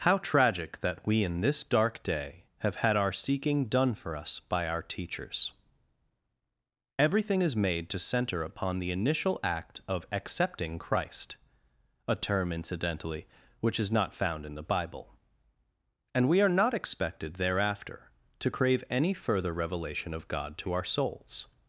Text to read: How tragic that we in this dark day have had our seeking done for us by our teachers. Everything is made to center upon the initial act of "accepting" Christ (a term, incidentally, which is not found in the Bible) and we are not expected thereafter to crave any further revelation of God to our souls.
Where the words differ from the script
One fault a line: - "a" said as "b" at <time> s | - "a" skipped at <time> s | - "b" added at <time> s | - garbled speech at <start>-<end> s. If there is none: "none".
none